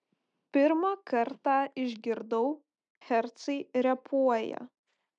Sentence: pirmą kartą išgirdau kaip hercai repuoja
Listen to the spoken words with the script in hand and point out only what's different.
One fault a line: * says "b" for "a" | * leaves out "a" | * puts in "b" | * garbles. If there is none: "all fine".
* leaves out "kaip"